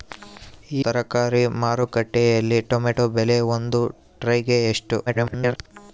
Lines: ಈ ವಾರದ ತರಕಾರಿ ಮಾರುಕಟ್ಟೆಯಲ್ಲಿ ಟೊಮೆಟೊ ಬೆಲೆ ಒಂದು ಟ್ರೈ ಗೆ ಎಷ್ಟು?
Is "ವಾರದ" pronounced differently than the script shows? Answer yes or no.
yes